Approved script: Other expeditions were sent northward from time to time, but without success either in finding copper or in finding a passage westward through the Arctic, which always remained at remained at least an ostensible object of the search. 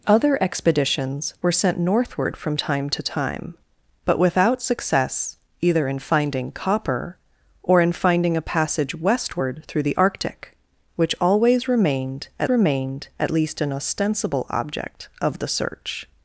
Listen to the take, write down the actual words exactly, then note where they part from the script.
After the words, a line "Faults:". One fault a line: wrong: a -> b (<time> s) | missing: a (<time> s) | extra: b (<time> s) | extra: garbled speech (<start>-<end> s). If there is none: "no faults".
Other expeditions were sent northward from time to time, but without success either in finding copper or in finding a passage westward through the Arctic, which always remained at remained at least an ostensible object of the search.
Faults:
no faults